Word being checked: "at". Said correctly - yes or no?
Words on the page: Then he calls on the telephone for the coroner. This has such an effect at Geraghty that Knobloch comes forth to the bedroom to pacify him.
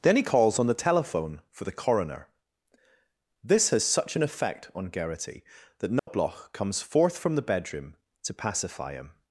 no